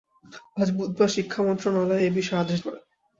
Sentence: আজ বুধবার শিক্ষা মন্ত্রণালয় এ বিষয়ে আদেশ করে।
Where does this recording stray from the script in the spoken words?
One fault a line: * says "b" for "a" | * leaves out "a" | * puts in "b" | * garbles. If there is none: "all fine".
all fine